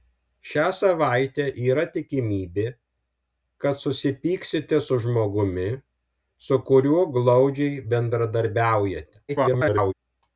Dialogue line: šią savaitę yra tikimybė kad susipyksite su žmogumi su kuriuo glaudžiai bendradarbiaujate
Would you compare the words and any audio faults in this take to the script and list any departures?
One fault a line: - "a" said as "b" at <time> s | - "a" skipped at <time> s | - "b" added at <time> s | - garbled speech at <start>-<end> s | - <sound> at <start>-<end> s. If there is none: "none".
- garbled speech at 9.3-9.9 s